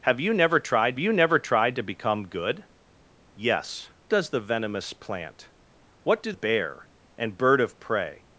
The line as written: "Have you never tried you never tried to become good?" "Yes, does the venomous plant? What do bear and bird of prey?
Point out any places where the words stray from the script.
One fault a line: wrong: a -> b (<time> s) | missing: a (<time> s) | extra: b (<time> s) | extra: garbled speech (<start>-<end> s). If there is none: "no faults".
no faults